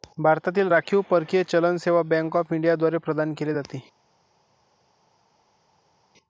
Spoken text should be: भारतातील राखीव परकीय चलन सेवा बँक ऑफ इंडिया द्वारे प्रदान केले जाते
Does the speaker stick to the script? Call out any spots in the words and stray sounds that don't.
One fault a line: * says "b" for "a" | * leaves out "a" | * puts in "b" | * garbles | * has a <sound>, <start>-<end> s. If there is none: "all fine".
all fine